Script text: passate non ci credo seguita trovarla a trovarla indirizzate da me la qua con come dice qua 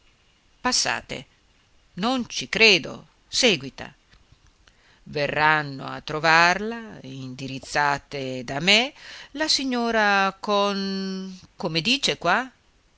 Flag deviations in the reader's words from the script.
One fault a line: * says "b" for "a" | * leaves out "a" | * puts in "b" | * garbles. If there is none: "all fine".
* says "verranno" for "trovarla"
* says "signora" for "qua"